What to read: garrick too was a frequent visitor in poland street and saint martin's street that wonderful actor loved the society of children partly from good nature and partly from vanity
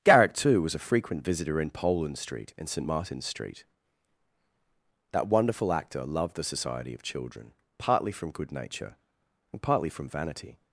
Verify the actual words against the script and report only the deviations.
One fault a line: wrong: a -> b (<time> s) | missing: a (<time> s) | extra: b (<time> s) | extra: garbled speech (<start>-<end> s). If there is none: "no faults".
no faults